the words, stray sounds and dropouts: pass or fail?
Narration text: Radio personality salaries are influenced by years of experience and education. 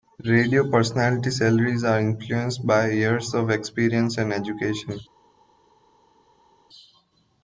pass